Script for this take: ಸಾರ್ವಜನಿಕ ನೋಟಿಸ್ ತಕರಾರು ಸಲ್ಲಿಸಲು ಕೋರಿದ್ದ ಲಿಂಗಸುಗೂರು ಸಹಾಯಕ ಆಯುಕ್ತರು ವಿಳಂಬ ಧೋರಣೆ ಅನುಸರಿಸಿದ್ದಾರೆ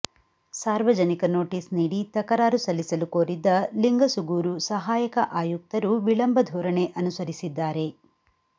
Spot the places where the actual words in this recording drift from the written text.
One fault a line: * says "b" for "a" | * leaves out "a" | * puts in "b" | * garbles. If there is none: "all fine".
* puts in "ನೀಡಿ"